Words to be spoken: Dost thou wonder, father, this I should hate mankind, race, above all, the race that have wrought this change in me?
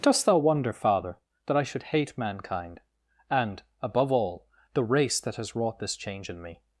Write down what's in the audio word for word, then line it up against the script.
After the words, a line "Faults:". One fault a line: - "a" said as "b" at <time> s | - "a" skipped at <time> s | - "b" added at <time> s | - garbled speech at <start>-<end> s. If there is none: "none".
Dost thou wonder, father, that I should hate mankind, and, above all, the race that has wrought this change in me?
Faults:
- "this" said as "that" at 1.4 s
- "race" said as "and" at 3.3 s
- "have" said as "has" at 5.3 s